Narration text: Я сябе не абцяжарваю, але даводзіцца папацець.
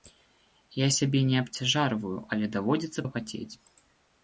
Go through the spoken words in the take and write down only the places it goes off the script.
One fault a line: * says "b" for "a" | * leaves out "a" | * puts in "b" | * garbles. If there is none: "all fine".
all fine